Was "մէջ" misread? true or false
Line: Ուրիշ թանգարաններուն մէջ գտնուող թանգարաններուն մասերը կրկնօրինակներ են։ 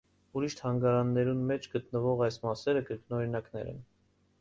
false